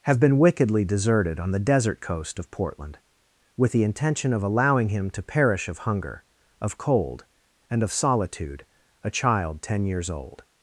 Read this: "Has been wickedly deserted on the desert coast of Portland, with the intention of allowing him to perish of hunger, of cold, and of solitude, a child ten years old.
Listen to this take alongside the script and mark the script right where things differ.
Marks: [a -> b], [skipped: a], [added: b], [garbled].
["Has -> Have] been wickedly deserted on the desert coast of Portland, with the intention of allowing him to perish of hunger, of cold, and of solitude, a child ten years old.